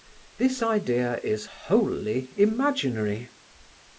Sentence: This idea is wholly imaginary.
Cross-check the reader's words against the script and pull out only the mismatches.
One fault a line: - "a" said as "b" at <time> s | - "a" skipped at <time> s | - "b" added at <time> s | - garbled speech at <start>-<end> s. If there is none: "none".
none